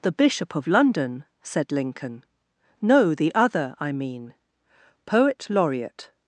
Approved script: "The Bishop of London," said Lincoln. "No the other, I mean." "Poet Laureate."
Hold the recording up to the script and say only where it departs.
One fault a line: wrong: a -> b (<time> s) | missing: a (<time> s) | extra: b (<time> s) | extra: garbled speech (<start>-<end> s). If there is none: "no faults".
no faults